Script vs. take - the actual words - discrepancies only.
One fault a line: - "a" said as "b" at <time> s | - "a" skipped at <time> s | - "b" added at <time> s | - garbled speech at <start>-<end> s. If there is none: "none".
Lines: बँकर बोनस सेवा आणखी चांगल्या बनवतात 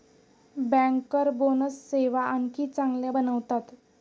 none